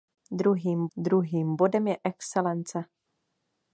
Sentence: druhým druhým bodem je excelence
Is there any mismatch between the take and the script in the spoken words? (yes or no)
no